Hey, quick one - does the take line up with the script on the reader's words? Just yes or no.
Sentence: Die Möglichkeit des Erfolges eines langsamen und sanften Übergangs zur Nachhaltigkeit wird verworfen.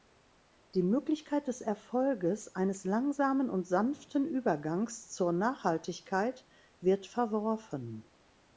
yes